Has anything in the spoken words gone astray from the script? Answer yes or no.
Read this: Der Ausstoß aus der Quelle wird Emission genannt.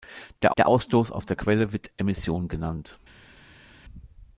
yes